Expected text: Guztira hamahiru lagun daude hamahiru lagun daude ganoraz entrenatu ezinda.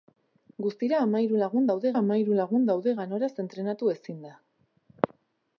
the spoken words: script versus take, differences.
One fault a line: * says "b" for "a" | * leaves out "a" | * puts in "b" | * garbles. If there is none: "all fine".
all fine